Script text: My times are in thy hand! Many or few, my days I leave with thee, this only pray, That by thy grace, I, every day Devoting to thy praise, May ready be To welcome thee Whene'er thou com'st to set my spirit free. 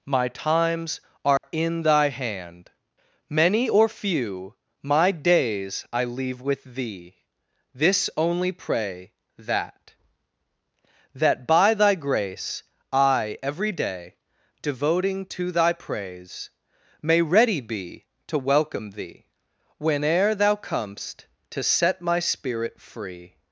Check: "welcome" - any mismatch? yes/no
no